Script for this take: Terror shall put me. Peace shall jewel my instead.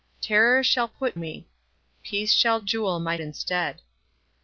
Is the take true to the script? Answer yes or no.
yes